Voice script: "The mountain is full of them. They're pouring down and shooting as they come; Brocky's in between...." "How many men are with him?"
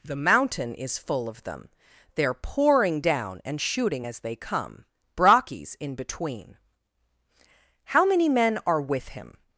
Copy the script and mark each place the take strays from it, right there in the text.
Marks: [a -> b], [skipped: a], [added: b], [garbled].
"The mountain is full of them. They're pouring down and shooting as they come; Brocky's in between...." "How many men are with him?"